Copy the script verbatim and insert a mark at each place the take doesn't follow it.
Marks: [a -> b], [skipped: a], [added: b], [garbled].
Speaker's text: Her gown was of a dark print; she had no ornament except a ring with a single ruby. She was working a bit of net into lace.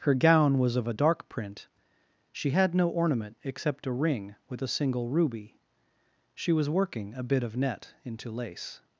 Her gown was of a dark print; she had no ornament except a ring with a single ruby. She was working a bit of net into lace.